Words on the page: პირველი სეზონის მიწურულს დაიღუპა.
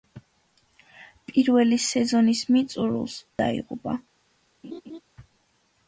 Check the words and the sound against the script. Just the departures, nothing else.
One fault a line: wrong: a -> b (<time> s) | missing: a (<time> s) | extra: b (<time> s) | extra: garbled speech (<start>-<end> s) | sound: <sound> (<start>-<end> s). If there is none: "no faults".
sound: laugh (4.6-5.0 s)